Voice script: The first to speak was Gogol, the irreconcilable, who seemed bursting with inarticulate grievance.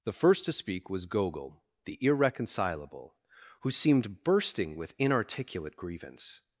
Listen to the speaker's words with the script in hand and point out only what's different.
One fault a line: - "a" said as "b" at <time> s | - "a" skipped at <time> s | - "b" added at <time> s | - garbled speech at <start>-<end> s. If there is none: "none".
none